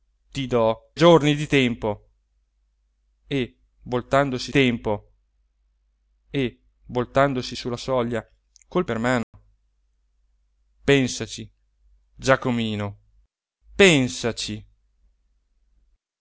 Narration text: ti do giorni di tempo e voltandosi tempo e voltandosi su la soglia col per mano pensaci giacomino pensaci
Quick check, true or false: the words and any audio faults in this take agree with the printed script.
false